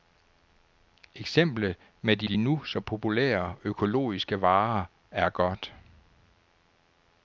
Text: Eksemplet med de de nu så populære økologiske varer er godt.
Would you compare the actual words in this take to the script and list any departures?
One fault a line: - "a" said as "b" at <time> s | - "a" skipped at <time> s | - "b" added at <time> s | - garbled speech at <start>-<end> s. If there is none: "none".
none